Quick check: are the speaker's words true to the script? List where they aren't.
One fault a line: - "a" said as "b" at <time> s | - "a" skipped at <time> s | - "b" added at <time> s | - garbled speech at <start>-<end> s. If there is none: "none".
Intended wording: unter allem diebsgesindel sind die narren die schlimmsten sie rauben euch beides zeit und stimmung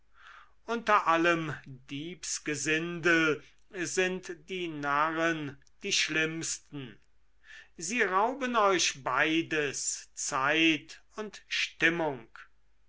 none